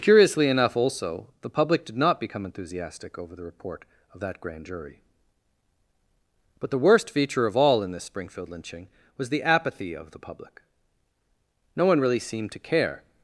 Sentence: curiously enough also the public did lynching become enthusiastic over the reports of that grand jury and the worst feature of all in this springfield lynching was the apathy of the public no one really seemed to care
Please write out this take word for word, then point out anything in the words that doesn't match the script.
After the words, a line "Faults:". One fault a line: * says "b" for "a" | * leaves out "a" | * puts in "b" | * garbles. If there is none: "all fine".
curiously enough also the public did not become enthusiastic over the report of that grand jury but the worst feature of all in this springfield lynching was the apathy of the public no one really seemed to care
Faults:
* says "not" for "lynching"
* says "report" for "reports"
* says "but" for "and"